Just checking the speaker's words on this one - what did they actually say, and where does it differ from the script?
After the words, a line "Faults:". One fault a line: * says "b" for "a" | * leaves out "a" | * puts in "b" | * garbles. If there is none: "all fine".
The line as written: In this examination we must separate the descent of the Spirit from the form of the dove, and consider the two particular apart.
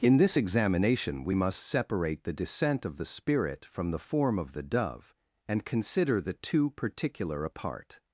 In this examination we must separate the descent of the Spirit from the form of the dove, and consider the two particular apart.
Faults:
all fine